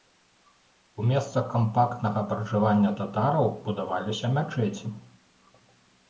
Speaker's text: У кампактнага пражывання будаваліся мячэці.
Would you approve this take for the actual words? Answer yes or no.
no